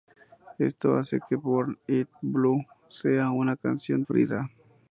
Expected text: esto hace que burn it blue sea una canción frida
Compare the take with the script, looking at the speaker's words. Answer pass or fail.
pass